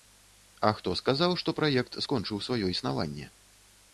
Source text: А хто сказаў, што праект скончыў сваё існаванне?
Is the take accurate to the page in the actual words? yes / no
yes